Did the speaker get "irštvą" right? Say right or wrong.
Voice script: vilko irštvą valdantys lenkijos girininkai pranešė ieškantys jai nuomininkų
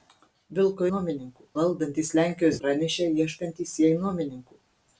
wrong